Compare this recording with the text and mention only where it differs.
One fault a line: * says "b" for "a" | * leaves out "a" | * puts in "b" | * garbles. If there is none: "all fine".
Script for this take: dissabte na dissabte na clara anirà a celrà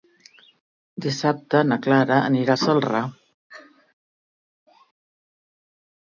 * leaves out "dissabte na"